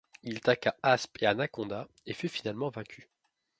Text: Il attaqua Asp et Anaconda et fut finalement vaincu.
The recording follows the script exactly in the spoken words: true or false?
true